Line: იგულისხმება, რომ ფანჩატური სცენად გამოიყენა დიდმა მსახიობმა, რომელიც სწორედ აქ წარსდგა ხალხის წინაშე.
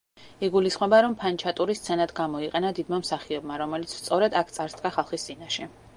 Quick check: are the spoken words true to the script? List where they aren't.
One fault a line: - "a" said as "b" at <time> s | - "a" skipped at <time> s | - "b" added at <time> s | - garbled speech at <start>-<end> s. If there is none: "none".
none